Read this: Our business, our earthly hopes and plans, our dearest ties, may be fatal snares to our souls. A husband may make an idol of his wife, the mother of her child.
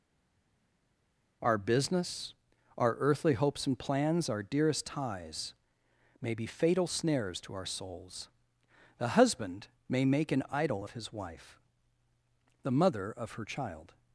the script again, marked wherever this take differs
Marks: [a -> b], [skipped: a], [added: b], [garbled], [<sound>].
Our business, our earthly hopes and plans, our dearest ties, may be fatal snares to our souls. [A -> The] husband may make an idol of his wife, the mother of her child.